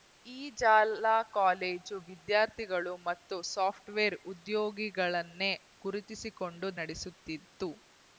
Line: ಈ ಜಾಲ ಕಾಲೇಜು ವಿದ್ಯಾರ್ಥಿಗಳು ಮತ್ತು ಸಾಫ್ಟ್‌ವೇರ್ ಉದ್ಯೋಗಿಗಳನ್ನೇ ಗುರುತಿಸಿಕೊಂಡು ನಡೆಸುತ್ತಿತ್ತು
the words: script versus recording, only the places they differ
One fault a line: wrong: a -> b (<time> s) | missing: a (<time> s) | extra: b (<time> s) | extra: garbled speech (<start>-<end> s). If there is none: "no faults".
no faults